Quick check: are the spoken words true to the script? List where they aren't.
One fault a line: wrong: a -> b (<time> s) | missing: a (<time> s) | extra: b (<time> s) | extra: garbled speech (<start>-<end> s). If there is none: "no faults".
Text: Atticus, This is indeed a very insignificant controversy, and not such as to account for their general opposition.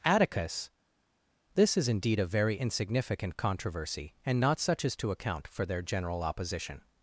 no faults